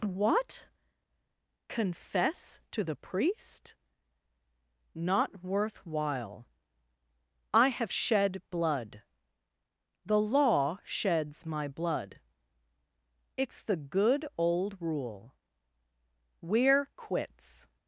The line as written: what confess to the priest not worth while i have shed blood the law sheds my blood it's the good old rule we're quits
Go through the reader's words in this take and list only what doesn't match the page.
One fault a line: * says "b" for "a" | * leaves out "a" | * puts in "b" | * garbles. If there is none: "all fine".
all fine